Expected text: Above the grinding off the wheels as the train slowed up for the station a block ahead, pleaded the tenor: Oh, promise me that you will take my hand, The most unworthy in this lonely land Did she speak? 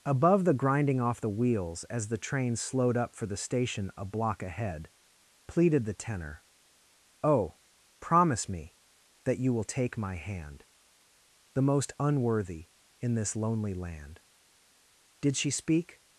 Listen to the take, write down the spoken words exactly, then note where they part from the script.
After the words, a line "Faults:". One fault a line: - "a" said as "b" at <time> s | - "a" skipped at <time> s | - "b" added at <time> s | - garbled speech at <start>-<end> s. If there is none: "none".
Above the grinding off the wheels as the train slowed up for the station a block ahead, pleaded the tenor: Oh, promise me that you will take my hand, The most unworthy in this lonely land Did she speak?
Faults:
none